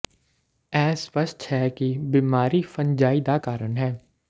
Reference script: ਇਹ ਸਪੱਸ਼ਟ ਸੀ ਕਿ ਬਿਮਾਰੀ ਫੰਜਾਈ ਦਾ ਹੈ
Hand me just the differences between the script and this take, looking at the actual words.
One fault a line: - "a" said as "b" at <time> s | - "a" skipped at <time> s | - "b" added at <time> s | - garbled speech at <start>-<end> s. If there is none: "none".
- "ਸੀ" said as "ਹੈ" at 1.5 s
- "ਕਾਰਨ" added at 3.4 s